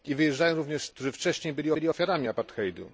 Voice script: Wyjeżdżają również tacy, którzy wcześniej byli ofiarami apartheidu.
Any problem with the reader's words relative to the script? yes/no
yes